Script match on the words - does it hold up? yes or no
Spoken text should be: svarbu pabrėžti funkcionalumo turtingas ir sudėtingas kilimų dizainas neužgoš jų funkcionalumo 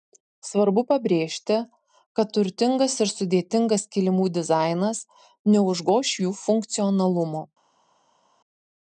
no